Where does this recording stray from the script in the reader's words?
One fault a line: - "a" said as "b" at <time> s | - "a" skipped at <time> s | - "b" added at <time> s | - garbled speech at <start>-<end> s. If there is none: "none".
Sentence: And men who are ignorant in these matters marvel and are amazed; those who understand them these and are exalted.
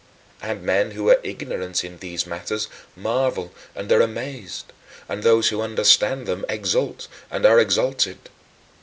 - "and" added at 5.1 s
- "these" said as "exult" at 6.5 s